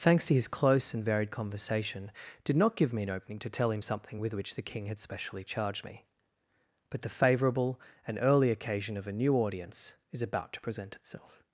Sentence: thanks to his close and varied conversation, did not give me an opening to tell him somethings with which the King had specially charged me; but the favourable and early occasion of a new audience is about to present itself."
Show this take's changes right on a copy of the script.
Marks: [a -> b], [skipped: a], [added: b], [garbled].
thanks to his close and varied conversation, did not give me an opening to tell him [somethings -> something] with which the King had specially charged me; but the favourable and early occasion of a new audience is about to present itself."